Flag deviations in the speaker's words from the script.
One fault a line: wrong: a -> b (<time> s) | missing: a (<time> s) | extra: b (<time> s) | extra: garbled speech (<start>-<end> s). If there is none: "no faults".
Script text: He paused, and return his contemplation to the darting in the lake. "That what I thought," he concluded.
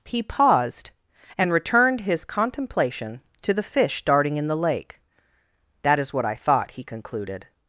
wrong: return -> returned (1.5 s)
extra: fish (3.6 s)
extra: is (6.0 s)